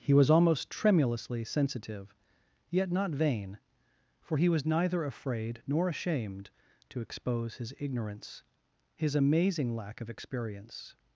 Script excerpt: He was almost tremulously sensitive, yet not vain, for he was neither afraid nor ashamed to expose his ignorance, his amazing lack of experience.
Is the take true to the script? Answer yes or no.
yes